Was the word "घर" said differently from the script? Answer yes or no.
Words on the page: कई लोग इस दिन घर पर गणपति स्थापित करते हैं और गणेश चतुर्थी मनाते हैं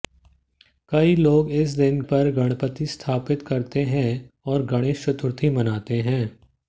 yes